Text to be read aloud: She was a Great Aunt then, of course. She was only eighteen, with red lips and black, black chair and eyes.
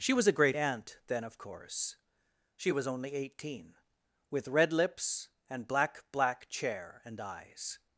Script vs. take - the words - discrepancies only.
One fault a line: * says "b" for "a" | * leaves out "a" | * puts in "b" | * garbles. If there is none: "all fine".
all fine